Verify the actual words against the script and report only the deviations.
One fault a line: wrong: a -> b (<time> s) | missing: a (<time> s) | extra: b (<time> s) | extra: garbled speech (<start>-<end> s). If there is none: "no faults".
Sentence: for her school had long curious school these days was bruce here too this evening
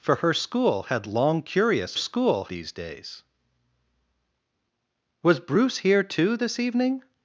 no faults